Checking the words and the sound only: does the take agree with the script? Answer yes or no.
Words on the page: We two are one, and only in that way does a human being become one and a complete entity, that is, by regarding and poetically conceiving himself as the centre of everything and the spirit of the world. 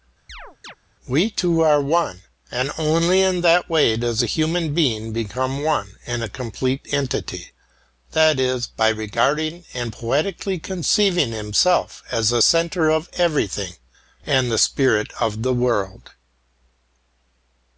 no